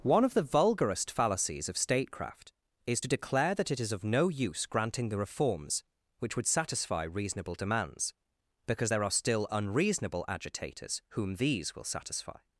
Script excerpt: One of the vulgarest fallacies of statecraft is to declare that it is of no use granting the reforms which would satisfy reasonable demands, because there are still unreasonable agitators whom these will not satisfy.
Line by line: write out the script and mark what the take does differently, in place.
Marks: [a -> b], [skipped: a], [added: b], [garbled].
One of the vulgarest fallacies of statecraft is to declare that it is of no use granting the reforms which would satisfy reasonable demands, because there are still unreasonable agitators whom these will [skipped: not] satisfy.